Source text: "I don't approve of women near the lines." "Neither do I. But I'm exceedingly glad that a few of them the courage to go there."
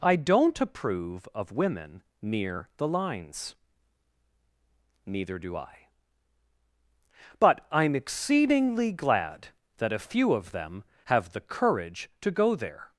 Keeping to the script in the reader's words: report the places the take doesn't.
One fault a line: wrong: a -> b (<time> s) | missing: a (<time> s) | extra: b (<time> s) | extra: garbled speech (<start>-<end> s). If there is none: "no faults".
extra: have (11.1 s)